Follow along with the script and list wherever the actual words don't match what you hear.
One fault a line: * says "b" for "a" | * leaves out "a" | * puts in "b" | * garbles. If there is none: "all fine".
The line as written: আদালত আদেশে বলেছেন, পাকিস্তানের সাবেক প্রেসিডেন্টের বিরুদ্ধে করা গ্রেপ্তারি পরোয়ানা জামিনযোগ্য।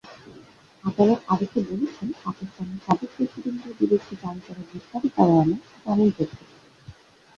* puts in "জারি"